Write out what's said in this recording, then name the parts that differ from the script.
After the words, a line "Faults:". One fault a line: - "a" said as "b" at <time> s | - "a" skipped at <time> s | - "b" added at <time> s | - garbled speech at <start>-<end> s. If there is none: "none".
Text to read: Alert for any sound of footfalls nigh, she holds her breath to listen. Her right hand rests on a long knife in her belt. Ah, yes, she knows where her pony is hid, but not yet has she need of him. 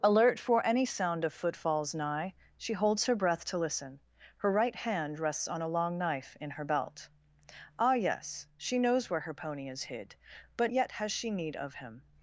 Alert for any sound of footfalls nigh, she holds her breath to listen. Her right hand rests on a long knife in her belt. Ah, yes, she knows where her pony is hid, but yet has she need of him.
Faults:
- "not" skipped at 10.7 s